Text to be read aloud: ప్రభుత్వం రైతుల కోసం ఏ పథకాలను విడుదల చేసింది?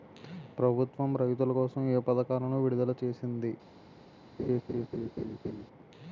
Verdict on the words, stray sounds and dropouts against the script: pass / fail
fail